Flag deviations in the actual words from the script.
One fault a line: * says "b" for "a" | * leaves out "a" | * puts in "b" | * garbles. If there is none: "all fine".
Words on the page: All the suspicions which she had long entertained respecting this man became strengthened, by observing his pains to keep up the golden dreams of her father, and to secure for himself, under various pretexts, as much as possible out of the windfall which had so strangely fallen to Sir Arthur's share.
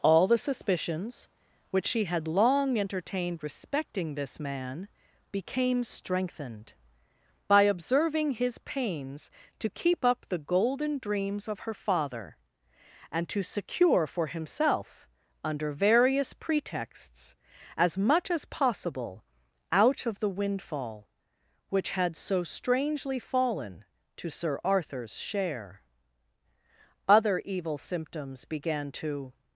* puts in "Other evil symptoms began to"